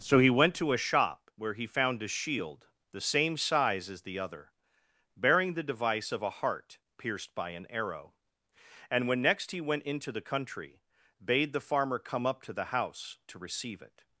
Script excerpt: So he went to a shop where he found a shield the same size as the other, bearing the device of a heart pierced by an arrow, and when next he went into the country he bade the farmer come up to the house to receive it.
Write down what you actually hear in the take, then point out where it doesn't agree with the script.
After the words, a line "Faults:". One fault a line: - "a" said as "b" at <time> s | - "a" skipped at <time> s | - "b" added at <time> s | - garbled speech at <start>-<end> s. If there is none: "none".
So he went to a shop where he found a shield the same size as the other, bearing the device of a heart pierced by an arrow, and when next he went into the country bade the farmer come up to the house to receive it.
Faults:
- "he" skipped at 10.8 s